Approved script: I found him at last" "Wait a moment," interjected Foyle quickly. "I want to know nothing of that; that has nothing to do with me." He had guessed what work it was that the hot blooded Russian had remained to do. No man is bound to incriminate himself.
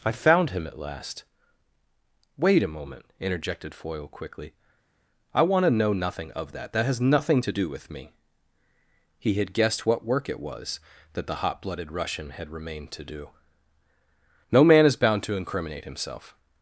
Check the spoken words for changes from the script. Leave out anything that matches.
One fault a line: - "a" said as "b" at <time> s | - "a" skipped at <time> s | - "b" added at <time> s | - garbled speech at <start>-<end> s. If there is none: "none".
none